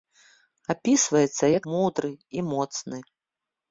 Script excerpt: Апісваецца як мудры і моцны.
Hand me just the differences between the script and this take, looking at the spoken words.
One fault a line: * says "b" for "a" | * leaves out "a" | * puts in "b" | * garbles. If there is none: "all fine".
all fine